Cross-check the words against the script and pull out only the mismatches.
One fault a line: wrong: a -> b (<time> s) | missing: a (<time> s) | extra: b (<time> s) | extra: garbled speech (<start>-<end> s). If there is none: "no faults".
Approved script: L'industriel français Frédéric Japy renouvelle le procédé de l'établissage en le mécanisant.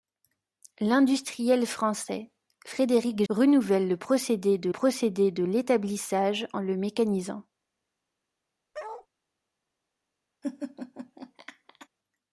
missing: Japy (3.2 s)
extra: procédé de (4.7 s)